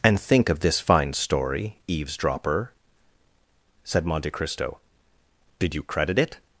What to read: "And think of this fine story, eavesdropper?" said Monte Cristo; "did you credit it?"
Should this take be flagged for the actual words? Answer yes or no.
no